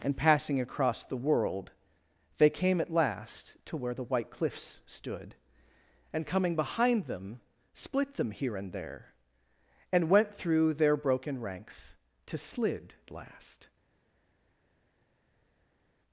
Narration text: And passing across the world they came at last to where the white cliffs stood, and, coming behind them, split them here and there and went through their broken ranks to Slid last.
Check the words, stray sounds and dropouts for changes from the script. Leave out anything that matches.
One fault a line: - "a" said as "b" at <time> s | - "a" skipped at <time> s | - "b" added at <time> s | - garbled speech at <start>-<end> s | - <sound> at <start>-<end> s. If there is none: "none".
none